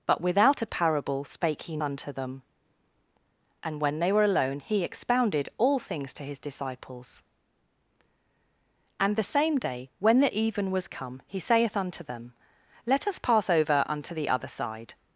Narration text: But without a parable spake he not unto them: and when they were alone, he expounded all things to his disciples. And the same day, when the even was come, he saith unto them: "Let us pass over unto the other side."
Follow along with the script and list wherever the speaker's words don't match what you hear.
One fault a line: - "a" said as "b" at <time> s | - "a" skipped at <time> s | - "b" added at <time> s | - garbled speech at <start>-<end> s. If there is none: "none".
- "not" skipped at 1.8 s